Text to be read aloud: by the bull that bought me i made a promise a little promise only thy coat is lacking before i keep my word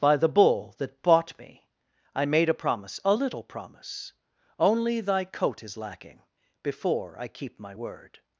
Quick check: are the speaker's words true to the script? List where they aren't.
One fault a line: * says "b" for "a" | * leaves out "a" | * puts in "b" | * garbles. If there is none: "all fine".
all fine